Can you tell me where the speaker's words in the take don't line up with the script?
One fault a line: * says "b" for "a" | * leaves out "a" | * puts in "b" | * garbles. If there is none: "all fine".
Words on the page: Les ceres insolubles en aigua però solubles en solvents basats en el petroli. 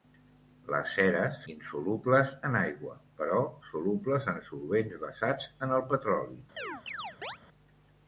all fine